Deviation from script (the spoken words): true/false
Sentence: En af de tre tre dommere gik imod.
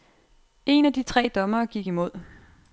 true